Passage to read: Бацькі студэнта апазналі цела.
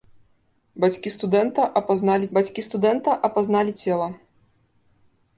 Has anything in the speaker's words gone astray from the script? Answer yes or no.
yes